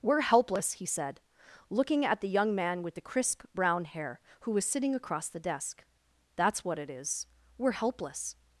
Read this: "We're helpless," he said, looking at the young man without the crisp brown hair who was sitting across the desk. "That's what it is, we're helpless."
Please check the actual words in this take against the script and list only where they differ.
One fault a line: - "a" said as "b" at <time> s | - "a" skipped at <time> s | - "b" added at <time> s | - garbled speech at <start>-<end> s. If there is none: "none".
- "without" said as "with" at 2.8 s